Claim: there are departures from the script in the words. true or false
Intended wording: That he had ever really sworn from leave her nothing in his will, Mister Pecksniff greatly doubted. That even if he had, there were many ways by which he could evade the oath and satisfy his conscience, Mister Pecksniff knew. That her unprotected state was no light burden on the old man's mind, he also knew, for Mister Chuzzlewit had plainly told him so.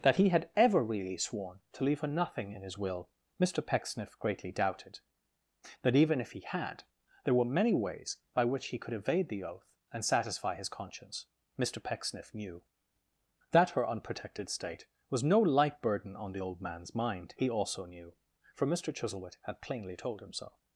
true